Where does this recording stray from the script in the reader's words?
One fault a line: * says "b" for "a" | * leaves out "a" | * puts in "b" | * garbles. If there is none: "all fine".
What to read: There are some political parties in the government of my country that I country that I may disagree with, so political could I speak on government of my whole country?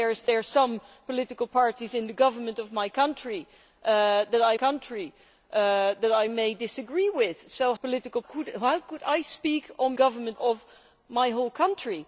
all fine